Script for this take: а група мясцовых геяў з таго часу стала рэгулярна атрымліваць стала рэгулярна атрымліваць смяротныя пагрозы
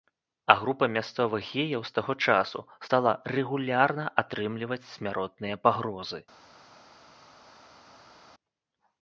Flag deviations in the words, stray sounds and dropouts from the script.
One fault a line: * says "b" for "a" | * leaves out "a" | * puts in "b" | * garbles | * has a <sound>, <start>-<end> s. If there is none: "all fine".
* leaves out "стала рэгулярна атрымліваць"